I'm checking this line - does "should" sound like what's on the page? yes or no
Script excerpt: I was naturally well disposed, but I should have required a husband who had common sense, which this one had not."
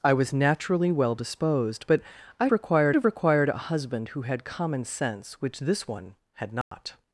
no